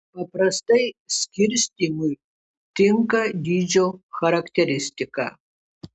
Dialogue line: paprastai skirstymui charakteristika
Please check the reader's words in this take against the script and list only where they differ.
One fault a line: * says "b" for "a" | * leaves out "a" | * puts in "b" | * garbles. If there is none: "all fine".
* puts in "tinka dydžio"